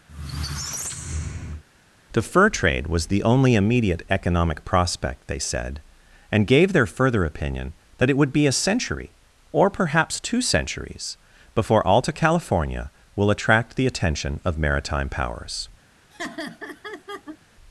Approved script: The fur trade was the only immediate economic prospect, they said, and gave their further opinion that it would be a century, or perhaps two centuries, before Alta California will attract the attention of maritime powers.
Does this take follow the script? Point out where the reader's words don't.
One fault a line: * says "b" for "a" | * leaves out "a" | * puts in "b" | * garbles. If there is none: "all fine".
all fine